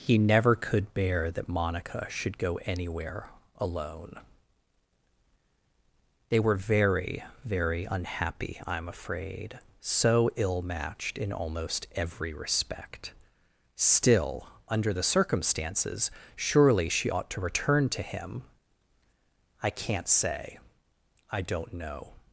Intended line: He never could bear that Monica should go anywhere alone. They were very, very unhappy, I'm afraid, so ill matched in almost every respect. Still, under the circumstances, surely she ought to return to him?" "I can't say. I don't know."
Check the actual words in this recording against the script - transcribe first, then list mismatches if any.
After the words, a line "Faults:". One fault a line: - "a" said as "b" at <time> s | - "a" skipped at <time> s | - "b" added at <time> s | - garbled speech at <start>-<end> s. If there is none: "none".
He never could bear that Monica should go anywhere alone. They were very, very unhappy, I'm afraid, so ill matched in almost every respect. Still, under the circumstances, surely she ought to return to him?" "I can't say. I don't know."
Faults:
none